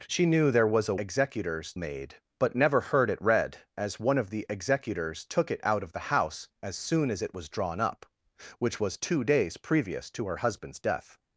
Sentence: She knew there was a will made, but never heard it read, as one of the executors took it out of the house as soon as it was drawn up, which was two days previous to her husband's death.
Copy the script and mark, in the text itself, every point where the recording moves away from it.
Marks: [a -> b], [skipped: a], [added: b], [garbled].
She knew there was a [will -> executors] made, but never heard it read, as one of the executors took it out of the house as soon as it was drawn up, which was two days previous to her husband's death.